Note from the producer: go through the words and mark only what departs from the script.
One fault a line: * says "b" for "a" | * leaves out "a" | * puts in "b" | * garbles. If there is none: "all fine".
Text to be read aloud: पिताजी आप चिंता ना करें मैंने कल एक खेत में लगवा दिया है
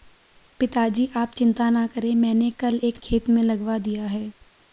all fine